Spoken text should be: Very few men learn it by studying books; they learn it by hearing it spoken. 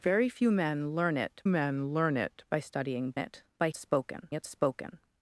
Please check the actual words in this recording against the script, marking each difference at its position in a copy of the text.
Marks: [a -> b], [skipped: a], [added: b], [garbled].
Very few men learn it [by studying books; they learn -> men learn it by studying] it by [hearing -> spoken] it spoken.